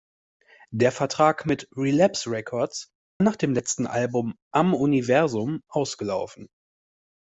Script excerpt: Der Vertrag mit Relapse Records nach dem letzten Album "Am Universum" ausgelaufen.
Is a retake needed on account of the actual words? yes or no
no